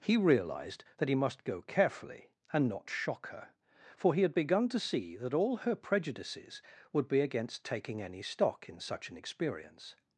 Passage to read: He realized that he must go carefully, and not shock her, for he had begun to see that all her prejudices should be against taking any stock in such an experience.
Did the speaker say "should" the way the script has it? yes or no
no